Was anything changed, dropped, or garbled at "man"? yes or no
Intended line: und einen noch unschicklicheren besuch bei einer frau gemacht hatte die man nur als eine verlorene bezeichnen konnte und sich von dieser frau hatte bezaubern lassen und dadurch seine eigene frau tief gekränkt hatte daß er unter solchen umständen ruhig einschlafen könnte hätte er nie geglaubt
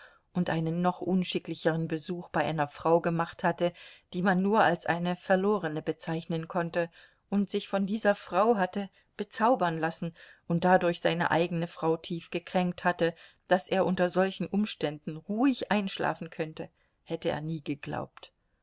no